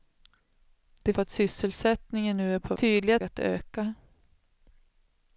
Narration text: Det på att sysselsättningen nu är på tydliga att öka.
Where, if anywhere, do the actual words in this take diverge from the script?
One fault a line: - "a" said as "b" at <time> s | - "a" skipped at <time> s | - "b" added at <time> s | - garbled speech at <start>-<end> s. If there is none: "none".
none